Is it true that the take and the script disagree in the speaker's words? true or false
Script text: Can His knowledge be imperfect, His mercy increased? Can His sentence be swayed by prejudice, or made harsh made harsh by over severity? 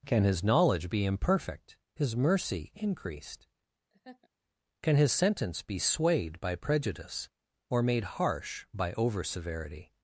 true